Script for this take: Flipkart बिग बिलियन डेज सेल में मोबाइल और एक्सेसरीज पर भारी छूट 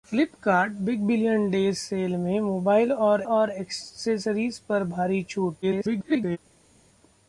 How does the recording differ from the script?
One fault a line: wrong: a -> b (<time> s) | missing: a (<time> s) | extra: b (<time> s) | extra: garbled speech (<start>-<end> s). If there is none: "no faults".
extra: और (3.2 s)
extra: garbled speech (5.6-6.4 s)